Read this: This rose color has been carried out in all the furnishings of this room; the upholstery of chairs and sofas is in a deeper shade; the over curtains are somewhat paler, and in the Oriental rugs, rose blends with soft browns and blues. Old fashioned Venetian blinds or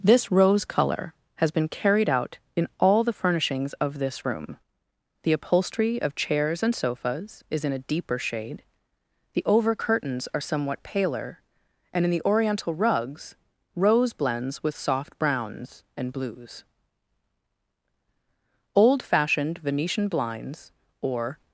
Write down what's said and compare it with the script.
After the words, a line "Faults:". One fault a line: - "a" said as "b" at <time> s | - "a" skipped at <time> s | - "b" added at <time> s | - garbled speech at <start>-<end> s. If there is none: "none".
This rose color has been carried out in all the furnishings of this room; the upholstery of chairs and sofas is in a deeper shade; the over curtains are somewhat paler, and in the Oriental rugs, rose blends with soft browns and blues. Old fashioned Venetian blinds or
Faults:
none